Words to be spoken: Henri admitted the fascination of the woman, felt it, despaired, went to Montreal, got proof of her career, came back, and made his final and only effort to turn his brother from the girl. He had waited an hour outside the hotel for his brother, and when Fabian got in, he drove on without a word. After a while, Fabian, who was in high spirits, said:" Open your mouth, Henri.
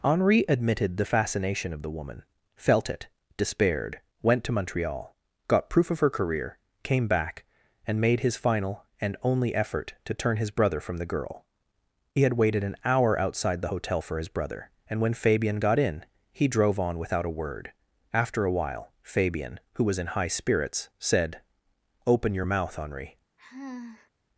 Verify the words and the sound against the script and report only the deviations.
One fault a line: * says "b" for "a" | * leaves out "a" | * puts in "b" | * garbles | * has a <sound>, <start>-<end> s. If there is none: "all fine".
* has a sigh, 23.4-24.1 s